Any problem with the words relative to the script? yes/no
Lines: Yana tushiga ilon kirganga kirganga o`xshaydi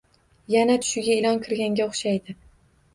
yes